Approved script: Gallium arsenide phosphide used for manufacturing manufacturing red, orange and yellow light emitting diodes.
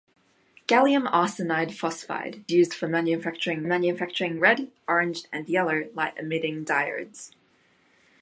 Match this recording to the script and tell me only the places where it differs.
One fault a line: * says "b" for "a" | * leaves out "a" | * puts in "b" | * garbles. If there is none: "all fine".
all fine